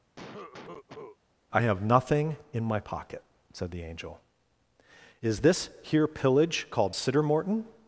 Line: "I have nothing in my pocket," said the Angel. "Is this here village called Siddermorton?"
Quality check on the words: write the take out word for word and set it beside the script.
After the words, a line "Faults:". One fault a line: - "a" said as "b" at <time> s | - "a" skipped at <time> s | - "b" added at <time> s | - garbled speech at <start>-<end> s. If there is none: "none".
"I have nothing in my pocket," said the Angel. "Is this here pillage called Siddermorton?"
Faults:
- "village" said as "pillage" at 6.1 s